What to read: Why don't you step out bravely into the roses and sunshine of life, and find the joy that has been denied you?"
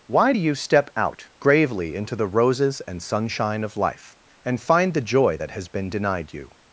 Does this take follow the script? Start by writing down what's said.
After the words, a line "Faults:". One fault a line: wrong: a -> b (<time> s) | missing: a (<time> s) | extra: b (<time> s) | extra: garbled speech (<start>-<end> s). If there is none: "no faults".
Why do you step out gravely into the roses and sunshine of life, and find the joy that has been denied you?"
Faults:
wrong: don't -> do (0.3 s)
wrong: bravely -> gravely (1.4 s)